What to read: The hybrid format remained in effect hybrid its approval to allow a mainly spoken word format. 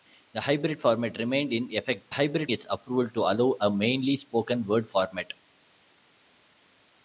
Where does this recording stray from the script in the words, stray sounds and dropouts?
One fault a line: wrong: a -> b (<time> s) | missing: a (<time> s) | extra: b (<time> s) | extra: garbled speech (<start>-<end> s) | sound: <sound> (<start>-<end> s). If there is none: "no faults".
no faults